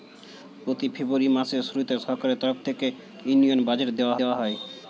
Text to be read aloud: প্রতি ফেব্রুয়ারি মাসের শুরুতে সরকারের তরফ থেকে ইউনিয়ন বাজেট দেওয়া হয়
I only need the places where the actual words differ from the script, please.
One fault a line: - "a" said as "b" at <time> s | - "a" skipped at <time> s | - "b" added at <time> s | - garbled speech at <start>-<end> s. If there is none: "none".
- "দেওয়া" added at 4.2 s